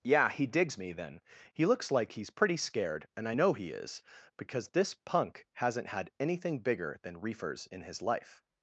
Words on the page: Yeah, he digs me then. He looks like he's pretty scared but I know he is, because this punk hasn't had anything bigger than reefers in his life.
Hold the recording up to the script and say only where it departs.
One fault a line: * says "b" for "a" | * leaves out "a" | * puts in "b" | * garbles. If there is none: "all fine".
* says "and" for "but"